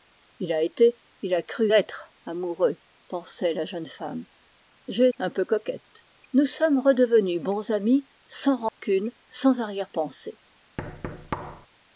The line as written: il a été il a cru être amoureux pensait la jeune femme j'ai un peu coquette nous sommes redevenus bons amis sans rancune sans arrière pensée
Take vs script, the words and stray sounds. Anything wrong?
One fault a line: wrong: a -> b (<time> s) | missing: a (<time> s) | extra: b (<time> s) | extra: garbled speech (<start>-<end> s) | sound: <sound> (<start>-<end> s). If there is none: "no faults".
sound: dropout (8.7-8.8 s)
sound: thud (10.8-11.7 s)